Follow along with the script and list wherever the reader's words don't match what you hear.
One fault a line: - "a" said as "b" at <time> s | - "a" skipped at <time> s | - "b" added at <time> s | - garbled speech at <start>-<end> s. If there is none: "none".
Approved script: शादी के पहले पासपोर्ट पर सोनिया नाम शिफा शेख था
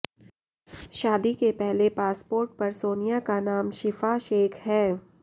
- "का" added at 3.3 s
- "था" said as "है" at 4.7 s